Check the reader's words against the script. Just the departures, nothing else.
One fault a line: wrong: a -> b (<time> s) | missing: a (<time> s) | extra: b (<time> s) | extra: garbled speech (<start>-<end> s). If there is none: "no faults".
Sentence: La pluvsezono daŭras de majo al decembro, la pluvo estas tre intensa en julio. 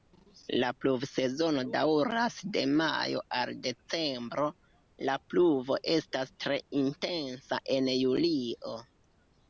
no faults